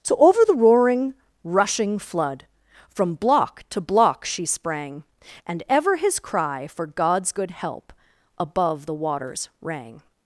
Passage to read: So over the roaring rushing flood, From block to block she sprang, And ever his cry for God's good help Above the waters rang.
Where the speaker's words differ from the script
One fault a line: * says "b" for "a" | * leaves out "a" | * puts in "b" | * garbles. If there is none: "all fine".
all fine